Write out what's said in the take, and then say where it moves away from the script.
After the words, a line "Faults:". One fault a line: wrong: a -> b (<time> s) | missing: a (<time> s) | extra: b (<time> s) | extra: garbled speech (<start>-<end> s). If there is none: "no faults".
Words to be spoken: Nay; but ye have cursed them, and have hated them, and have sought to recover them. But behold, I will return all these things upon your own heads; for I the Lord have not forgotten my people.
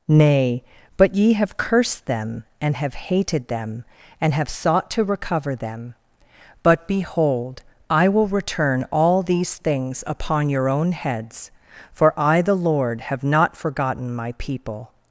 Nay; but ye have cursed them, and have hated them, and have sought to recover them. But behold, I will return all these things upon your own heads; for I the Lord have not forgotten my people.
Faults:
no faults